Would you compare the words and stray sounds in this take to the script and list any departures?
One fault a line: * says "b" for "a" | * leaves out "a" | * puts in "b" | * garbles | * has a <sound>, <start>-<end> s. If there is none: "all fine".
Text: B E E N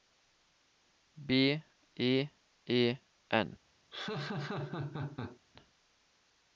* has a laugh, 3.9-5.4 s